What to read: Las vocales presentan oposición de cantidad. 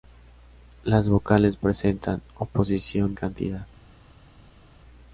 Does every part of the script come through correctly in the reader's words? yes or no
no